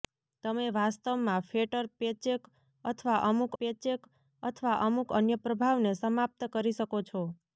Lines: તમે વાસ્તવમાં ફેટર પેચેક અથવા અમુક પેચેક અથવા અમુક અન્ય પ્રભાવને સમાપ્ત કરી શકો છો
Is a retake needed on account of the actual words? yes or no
no